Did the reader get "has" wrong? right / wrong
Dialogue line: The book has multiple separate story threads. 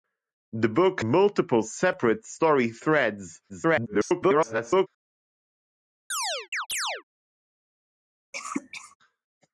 wrong